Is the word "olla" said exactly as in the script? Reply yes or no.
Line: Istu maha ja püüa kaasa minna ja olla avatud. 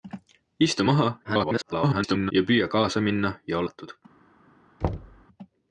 no